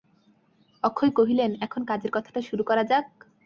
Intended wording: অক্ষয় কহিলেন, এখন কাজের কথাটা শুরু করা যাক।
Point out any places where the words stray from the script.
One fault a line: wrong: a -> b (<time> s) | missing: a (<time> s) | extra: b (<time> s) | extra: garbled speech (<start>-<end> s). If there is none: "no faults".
no faults